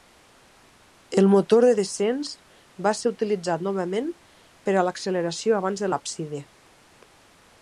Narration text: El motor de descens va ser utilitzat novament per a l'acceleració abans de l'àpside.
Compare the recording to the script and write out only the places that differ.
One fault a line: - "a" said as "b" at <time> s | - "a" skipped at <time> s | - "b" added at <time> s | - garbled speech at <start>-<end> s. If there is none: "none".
none